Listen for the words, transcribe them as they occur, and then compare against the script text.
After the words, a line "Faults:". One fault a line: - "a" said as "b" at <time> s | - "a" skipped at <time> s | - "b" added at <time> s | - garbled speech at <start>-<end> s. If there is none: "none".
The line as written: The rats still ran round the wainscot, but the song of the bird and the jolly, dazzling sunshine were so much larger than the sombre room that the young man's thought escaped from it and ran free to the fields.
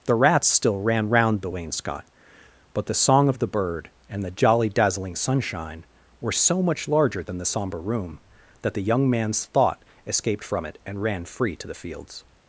The rats still ran round the wainscot, but the song of the bird and the jolly, dazzling sunshine were so much larger than the sombre room that the young man's thought escaped from it and ran free to the fields.
Faults:
none